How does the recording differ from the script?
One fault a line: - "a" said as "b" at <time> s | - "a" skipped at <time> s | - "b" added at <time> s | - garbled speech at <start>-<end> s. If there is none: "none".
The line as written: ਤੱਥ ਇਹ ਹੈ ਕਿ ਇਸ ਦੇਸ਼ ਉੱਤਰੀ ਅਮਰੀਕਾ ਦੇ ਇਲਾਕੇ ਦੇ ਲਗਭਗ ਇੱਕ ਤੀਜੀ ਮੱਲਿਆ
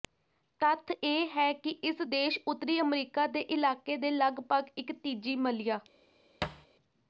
none